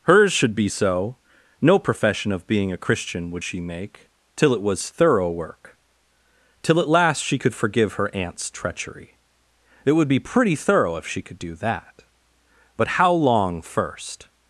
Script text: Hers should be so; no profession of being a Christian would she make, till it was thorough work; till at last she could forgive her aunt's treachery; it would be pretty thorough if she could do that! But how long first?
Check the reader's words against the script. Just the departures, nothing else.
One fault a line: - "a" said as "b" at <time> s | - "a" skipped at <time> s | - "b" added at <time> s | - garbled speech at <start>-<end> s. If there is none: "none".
none